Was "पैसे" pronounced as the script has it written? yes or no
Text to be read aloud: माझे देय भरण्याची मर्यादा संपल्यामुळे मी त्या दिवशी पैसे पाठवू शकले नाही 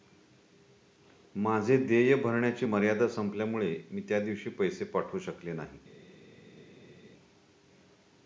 yes